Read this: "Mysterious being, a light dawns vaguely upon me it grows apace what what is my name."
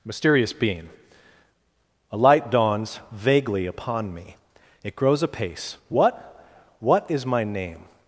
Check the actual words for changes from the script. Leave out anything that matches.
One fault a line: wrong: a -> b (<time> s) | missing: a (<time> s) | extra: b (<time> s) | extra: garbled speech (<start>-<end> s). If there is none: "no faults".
no faults